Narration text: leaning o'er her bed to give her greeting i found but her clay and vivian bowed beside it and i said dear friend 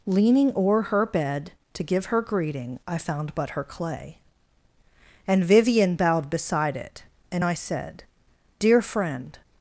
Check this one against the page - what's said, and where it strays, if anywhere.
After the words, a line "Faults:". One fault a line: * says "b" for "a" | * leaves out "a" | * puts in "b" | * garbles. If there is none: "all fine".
leaning o'er her bed to give her greeting i found but her clay and vivian bowed beside it and i said dear friend
Faults:
all fine